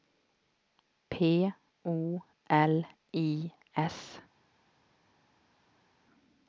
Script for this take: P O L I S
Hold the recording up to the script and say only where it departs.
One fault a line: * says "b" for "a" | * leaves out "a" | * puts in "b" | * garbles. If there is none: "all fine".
all fine